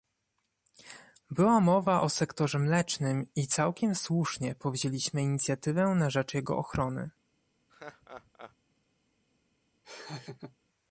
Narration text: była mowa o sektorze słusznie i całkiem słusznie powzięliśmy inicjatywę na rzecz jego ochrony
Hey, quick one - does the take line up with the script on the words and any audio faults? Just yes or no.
no